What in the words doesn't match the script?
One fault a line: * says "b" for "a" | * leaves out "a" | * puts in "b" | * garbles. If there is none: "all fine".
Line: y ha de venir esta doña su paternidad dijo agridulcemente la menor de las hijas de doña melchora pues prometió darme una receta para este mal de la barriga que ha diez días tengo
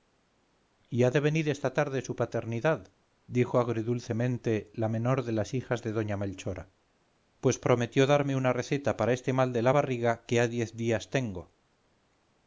* says "tarde" for "doña"